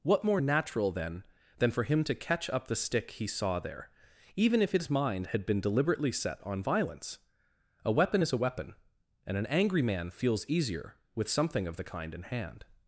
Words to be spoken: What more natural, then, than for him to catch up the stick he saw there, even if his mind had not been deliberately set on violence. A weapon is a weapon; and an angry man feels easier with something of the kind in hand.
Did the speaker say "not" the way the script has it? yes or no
no